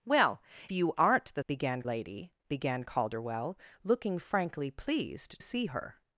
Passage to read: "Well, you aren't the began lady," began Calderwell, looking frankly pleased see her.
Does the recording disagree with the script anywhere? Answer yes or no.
no